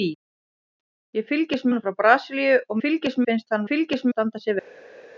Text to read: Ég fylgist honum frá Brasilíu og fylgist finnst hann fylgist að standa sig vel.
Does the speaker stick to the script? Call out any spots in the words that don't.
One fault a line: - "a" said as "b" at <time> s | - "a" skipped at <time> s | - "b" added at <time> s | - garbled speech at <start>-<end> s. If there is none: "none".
none